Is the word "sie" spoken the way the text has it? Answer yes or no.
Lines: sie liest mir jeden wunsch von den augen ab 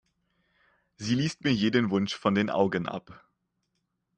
yes